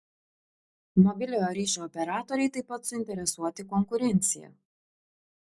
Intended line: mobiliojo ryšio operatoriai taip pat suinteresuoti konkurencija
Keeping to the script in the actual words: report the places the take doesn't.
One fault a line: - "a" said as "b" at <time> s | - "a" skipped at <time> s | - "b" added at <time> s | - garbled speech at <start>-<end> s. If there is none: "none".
none